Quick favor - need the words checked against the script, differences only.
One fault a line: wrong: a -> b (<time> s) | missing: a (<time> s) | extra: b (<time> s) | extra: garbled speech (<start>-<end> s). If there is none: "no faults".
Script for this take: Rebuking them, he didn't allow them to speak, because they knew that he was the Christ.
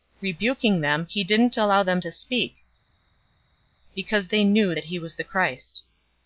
no faults